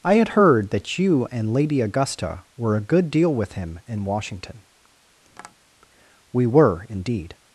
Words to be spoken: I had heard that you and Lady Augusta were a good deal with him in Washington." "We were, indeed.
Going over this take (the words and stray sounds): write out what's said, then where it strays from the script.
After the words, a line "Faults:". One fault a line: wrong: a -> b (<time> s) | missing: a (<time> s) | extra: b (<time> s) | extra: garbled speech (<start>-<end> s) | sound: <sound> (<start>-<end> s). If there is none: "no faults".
I had heard that you and Lady Augusta were a good deal with him in Washington." "We were, indeed.
Faults:
sound: tap (5.3-5.6 s)